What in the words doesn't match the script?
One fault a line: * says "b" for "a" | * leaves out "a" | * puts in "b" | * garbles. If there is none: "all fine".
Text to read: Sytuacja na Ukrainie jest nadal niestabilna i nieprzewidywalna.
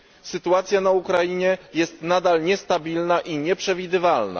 all fine